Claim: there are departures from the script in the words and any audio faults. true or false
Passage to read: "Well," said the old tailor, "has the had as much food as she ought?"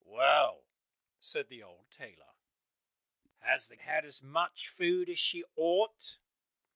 false